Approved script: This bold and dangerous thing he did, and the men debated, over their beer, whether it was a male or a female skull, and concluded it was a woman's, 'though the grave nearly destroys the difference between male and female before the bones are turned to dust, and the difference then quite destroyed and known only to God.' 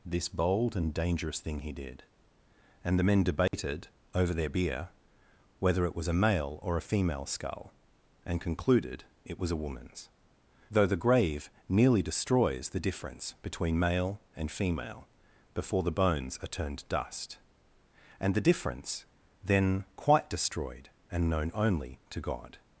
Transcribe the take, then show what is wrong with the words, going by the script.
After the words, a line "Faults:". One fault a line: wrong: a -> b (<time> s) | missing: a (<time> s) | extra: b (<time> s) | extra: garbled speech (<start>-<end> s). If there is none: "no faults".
This bold and dangerous thing he did, and the men debated, over their beer, whether it was a male or a female skull, and concluded it was a woman's, 'though the grave nearly destroys the difference between male and female before the bones are turned dust, and the difference then quite destroyed and known only to God.'
Faults:
missing: to (16.9 s)